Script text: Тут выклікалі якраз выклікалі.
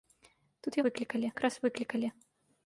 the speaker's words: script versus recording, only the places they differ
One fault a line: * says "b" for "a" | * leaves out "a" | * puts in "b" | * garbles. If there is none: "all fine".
all fine